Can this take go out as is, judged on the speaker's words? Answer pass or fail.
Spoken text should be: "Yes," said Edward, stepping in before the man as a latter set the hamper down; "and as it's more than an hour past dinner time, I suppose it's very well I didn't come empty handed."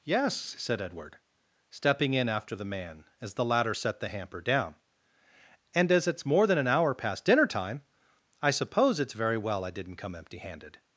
fail